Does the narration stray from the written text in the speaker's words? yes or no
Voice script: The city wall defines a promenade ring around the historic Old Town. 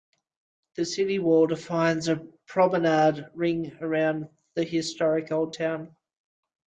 no